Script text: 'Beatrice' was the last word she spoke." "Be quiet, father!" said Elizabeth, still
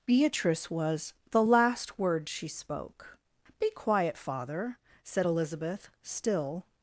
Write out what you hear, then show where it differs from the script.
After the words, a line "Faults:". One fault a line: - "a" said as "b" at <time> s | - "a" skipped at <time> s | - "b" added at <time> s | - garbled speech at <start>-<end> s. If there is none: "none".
'Beatrice' was the last word she spoke." "Be quiet, father!" said Elizabeth, still
Faults:
none